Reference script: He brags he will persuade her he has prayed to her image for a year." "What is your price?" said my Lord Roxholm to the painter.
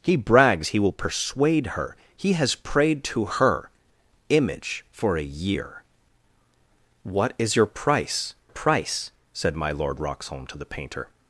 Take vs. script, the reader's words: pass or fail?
fail